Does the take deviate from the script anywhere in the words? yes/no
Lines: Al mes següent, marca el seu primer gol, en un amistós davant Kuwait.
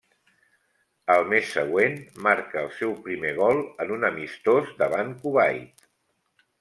no